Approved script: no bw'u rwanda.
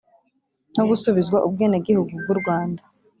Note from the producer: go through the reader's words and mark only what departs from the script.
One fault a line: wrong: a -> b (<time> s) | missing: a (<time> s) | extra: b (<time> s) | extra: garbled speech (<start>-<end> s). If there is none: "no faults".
extra: gusubizwa ubwenegihugu (0.9 s)